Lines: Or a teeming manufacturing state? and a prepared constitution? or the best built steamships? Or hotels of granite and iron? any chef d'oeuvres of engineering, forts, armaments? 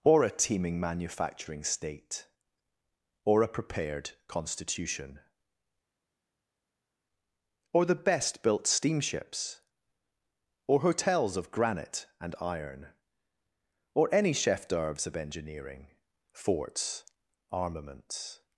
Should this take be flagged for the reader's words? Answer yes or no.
yes